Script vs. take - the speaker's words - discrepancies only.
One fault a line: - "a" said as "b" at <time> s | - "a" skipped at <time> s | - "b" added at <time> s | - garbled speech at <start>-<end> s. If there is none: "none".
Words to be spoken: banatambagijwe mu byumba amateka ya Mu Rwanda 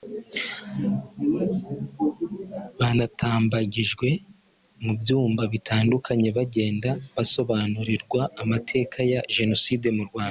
- "bitandukanye bagenda basobanurirwa" added at 5.5 s
- "Jenoside" added at 9.3 s